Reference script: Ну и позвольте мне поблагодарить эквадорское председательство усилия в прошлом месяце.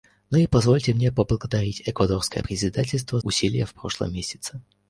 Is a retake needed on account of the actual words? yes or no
no